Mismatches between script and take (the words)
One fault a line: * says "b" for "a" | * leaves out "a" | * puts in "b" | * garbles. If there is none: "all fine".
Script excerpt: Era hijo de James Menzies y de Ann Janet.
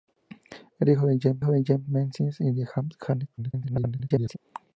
* puts in "hijo de James"
* garbles